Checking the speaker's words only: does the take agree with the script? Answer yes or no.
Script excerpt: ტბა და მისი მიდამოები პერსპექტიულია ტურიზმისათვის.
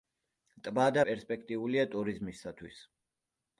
no